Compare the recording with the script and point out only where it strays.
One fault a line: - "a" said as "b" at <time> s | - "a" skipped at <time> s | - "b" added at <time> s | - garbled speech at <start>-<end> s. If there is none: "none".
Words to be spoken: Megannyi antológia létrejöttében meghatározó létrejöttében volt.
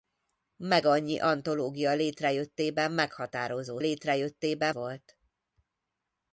none